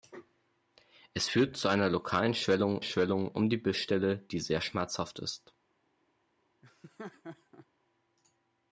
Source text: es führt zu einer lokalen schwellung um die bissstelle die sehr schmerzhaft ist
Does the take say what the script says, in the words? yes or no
no